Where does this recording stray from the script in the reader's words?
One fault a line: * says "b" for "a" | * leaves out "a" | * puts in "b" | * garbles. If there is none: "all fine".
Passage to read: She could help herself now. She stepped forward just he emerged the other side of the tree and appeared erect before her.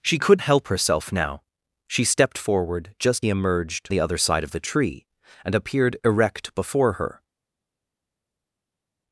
all fine